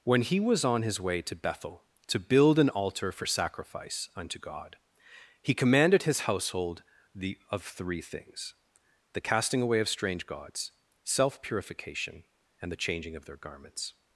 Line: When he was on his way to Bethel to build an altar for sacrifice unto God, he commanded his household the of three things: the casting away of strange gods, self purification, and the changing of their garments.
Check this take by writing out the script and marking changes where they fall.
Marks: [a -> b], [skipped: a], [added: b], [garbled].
When he was on his way to Bethel to build an altar for sacrifice unto God, he commanded his household the of three things: the casting away of strange gods, self purification, and the changing of their garments.